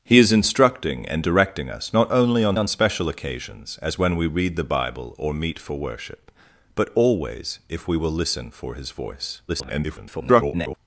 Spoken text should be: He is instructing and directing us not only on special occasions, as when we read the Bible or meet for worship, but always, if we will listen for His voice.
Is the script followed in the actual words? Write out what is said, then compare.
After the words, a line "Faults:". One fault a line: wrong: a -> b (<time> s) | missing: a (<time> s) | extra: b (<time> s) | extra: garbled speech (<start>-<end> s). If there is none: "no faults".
He is instructing and directing us not only on on special occasions, as when we read the Bible or meet for worship, but always, if we will listen for His voice. [garbled]
Faults:
extra: on (2.5 s)
extra: garbled speech (9.5-10.8 s)